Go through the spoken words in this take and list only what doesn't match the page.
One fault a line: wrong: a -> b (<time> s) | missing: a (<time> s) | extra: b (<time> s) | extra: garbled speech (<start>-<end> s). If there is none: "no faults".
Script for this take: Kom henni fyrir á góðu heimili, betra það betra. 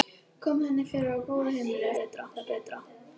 no faults